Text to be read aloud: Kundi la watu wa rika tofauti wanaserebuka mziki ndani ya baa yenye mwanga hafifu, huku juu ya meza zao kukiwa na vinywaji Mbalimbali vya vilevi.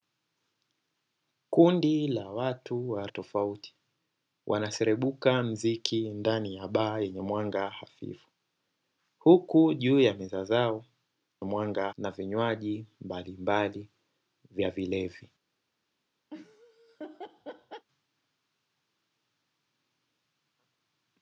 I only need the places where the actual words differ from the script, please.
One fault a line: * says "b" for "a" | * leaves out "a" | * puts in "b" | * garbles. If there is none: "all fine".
* leaves out "rika"
* says "mwanga" for "kukiwa"